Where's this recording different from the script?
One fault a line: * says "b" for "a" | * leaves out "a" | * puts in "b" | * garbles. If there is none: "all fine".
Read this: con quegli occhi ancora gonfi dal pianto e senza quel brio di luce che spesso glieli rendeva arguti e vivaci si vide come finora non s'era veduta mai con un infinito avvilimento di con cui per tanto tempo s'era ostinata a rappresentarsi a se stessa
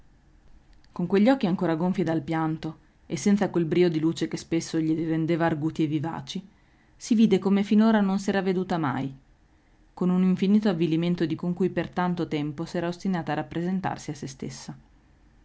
all fine